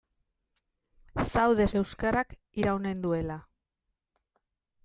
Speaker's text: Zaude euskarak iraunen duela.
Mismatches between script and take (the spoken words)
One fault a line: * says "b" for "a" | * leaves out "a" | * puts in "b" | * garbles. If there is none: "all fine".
all fine